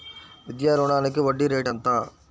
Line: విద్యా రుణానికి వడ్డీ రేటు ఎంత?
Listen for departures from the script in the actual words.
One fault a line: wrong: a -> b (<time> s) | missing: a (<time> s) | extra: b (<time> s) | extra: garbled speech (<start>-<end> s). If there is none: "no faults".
no faults